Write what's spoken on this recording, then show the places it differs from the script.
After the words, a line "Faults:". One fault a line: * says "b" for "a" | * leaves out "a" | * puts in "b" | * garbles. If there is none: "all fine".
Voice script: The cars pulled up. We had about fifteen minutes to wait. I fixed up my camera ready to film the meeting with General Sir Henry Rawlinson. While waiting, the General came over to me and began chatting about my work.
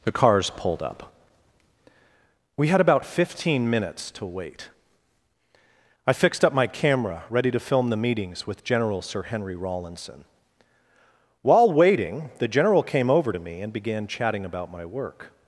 The cars pulled up. We had about fifteen minutes to wait. I fixed up my camera ready to film the meetings with General Sir Henry Rawlinson. While waiting, the General came over to me and began chatting about my work.
Faults:
* says "meetings" for "meeting"